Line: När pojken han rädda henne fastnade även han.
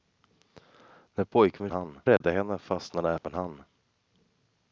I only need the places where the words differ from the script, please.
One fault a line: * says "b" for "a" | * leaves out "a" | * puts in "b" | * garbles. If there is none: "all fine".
all fine